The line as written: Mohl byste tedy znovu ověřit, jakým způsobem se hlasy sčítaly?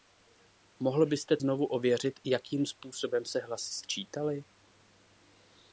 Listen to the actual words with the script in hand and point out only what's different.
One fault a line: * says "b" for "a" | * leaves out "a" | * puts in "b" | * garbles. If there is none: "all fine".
* leaves out "tedy"